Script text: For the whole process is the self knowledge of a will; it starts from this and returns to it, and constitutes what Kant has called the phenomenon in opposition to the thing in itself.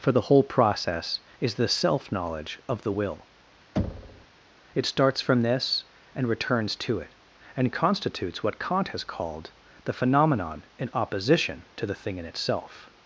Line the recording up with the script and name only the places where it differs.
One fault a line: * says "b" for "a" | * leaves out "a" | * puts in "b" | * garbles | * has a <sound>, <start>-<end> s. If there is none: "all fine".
* says "the" for "a"
* has a thud, 3.8-4.3 s